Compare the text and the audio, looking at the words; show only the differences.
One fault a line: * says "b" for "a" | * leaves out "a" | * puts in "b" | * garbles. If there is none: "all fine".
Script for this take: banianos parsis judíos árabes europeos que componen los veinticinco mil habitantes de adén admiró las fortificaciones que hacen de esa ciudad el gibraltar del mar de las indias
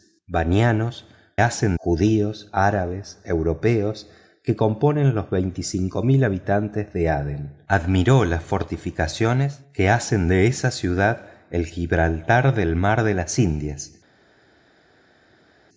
* says "hacen" for "parsis"